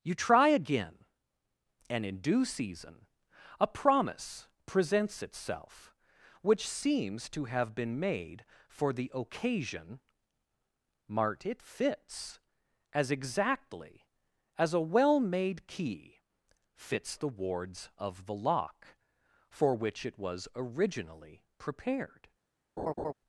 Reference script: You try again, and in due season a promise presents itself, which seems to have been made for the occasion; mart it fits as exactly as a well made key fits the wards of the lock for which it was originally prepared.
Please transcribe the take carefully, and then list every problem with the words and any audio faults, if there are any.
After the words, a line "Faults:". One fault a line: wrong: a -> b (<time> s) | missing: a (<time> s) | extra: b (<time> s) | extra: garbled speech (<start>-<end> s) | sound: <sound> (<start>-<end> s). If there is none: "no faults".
You try again, and in due season a promise presents itself, which seems to have been made for the occasion; mart it fits as exactly as a well made key fits the wards of the lock for which it was originally prepared.
Faults:
sound: laugh (22.8-23.1 s)